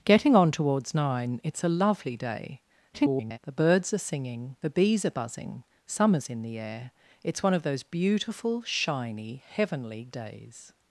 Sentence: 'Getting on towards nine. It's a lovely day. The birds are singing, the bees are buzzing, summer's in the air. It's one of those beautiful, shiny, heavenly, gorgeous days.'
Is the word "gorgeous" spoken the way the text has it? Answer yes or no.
no